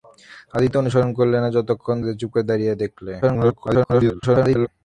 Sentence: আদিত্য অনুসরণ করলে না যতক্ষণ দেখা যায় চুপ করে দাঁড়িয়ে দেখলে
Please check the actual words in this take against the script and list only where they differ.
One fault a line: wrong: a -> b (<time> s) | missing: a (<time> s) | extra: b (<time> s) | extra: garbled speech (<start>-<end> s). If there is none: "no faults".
missing: দেখা (2.0 s)
extra: garbled speech (3.2-4.7 s)